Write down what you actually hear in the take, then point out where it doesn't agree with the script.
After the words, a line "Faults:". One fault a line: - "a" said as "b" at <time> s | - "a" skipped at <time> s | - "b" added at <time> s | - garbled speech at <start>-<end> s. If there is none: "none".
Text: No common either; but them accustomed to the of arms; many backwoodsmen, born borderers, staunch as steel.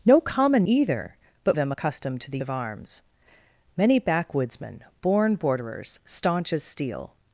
No common either; but them accustomed to the of arms; many backwoodsmen, born borderers, staunch as steel.
Faults:
none